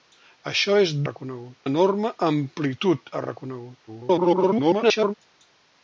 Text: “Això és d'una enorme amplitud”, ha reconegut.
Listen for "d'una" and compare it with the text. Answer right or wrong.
wrong